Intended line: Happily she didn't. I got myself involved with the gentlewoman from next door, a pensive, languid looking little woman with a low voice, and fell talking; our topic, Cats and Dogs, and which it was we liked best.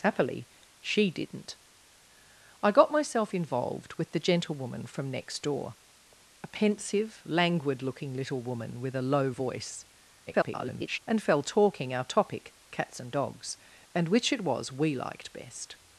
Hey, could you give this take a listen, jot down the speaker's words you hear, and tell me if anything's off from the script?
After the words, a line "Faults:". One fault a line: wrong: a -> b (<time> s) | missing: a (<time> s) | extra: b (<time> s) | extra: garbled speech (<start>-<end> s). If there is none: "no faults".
Happily she didn't. I got myself involved with the gentlewoman from next door, a pensive, languid looking little woman with a low voice, [garbled] and fell talking; our topic, Cats and Dogs, and which it was we liked best.
Faults:
extra: garbled speech (10.3-11.0 s)